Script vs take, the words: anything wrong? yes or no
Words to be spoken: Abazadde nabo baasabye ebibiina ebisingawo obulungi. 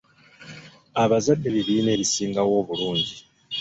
yes